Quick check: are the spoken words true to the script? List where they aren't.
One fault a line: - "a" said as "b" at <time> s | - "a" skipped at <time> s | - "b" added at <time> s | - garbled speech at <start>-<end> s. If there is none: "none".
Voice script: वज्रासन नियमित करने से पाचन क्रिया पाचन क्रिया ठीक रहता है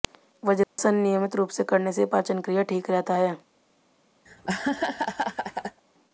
- "करने" said as "रूप" at 1.4 s
- "पाचन क्रिया" said as "करने से" at 1.6 s